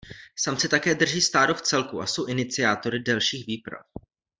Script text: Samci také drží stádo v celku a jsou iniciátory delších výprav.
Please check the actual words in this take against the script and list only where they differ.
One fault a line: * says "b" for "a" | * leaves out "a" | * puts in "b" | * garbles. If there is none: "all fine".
all fine